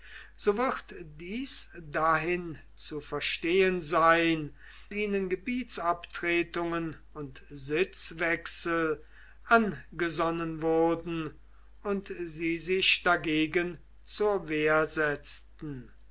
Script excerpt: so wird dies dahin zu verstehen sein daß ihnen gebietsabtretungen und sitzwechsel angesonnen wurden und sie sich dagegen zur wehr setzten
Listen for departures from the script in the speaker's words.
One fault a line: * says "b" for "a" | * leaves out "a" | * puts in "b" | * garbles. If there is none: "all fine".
* leaves out "daß"